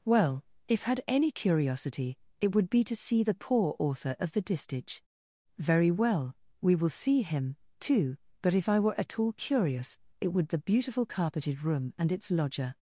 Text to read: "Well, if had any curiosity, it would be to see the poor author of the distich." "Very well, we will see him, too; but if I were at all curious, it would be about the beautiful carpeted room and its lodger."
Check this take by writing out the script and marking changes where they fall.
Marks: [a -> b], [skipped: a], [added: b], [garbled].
"Well, if had any curiosity, it would be to see the poor author of the distich." "Very well, we will see him, too; but if I were at all curious, it would [skipped: be about] the beautiful carpeted room and its lodger."